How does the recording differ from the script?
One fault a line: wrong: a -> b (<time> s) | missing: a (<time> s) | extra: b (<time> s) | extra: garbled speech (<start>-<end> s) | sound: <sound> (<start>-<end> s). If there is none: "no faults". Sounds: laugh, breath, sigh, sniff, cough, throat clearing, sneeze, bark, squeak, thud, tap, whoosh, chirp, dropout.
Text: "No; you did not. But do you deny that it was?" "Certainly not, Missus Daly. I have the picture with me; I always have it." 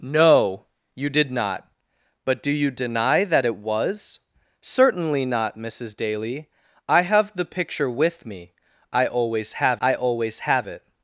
extra: I always have (9.8 s)